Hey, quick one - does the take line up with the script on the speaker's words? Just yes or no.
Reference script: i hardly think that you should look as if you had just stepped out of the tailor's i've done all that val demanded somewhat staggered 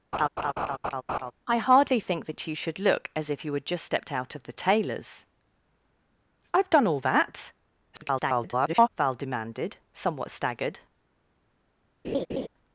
no